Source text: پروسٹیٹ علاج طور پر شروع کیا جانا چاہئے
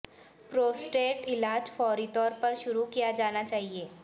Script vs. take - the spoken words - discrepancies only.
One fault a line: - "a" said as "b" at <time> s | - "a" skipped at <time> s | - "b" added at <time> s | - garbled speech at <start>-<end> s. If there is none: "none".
- "فوری" added at 1.8 s